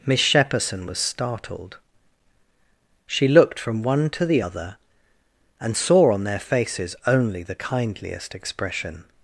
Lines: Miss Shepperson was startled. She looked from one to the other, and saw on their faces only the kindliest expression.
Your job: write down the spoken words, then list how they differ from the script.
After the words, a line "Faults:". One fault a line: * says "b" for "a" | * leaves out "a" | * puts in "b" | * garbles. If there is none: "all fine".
Miss Shepperson was startled. She looked from one to the other, and saw on their faces only the kindliest expression.
Faults:
all fine